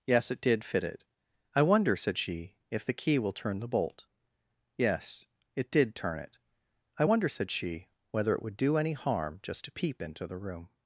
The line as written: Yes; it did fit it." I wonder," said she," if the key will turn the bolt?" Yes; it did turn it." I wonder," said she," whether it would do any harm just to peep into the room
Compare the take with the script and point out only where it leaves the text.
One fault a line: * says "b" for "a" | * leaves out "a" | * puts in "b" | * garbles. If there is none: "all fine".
all fine